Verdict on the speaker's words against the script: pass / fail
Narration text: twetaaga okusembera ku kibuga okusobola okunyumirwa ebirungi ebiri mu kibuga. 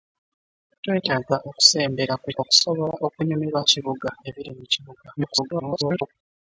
fail